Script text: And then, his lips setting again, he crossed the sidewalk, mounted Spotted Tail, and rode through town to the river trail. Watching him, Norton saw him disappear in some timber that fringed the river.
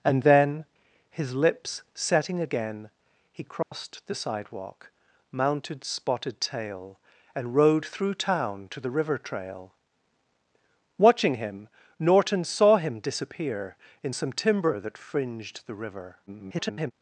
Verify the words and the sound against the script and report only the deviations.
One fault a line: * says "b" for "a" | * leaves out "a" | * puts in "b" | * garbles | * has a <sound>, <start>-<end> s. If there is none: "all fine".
* has a dropout, 3.6-3.7 s
* garbles